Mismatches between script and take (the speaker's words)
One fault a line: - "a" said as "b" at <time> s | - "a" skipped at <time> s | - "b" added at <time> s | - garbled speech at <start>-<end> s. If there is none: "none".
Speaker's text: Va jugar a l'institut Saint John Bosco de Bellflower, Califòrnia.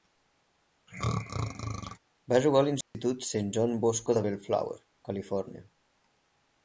none